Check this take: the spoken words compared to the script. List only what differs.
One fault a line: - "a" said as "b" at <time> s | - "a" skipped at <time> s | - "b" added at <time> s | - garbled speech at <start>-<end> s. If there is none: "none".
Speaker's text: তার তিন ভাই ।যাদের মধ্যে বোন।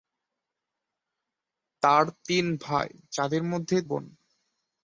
none